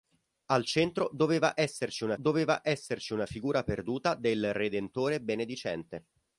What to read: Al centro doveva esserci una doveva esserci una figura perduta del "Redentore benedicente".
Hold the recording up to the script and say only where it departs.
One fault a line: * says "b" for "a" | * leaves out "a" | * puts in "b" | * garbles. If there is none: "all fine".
all fine